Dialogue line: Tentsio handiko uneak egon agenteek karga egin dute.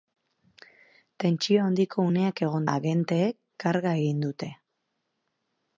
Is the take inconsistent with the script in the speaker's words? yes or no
no